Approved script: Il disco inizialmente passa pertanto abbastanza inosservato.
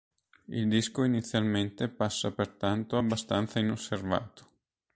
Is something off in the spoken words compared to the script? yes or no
no